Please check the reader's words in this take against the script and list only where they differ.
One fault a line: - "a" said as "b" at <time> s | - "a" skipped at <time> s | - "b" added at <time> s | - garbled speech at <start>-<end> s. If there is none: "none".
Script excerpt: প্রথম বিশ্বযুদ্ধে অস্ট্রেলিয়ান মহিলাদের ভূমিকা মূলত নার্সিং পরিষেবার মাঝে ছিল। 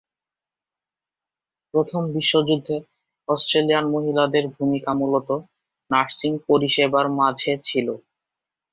none